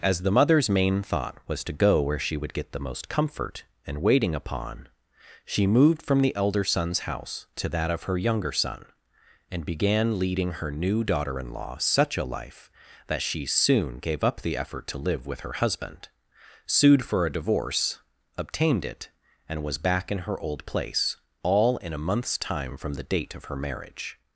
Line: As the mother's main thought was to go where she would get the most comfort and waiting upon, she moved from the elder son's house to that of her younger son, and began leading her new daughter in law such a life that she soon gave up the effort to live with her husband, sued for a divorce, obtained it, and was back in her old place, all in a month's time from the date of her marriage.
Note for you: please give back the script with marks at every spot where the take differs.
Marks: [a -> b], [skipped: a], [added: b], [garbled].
As the mother's main thought was to go where she would get the most comfort and waiting upon, she moved from the elder son's house to that of her younger son, and began leading her new daughter in law such a life that she soon gave up the effort to live with her husband, sued for a divorce, obtained it, and was back in her old place, all in a month's time from the date of her marriage.